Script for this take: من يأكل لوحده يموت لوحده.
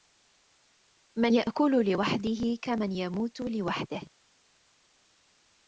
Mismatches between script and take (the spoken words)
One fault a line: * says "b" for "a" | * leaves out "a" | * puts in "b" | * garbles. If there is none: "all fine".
* puts in "كمن"